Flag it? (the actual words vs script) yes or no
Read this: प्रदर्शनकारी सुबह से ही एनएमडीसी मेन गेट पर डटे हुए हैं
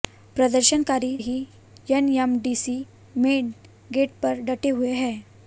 yes